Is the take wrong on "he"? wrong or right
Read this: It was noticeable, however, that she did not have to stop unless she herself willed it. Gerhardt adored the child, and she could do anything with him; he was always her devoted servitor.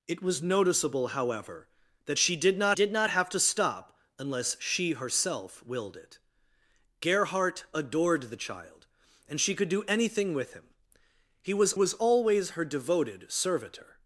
right